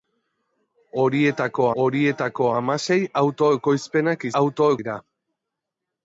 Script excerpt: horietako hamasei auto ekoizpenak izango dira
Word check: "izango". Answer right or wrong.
wrong